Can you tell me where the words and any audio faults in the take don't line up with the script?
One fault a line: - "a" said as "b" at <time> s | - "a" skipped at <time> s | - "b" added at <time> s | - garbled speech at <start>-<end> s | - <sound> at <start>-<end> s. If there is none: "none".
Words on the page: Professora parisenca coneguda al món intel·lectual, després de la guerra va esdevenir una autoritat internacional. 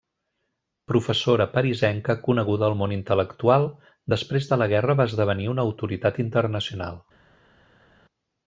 none